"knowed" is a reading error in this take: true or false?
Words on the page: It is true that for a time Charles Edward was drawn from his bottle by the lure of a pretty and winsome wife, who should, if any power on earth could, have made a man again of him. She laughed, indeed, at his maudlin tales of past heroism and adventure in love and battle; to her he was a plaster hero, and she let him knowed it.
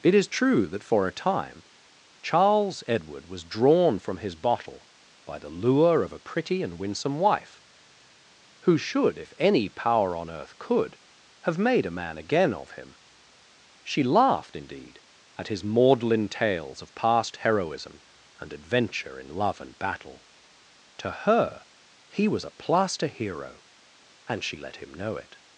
true